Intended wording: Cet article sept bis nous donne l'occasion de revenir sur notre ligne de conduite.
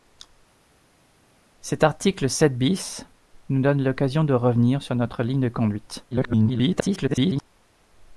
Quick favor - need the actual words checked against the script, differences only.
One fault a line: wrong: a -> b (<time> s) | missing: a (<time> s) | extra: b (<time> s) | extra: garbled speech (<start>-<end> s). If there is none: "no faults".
extra: garbled speech (6.1-7.5 s)